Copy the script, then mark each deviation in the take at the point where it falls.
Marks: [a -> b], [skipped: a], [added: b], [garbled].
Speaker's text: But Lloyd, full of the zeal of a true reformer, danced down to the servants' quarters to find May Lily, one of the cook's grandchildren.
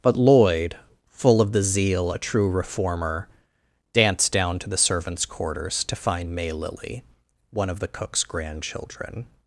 But Lloyd, full of the zeal [skipped: of] a true reformer, danced down to the servants' quarters to find May Lily, one of the cook's grandchildren.